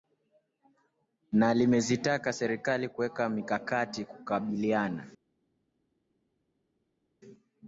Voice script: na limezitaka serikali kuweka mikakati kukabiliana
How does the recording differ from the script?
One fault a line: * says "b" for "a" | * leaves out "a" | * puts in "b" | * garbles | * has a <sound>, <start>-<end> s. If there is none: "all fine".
all fine